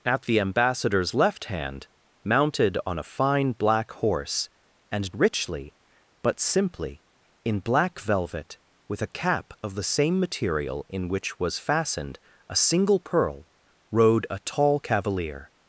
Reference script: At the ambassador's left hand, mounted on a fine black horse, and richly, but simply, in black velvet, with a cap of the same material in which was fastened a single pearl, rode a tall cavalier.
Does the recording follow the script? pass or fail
pass